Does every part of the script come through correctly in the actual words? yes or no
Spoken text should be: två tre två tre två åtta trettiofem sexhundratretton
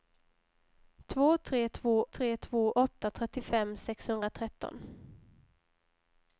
yes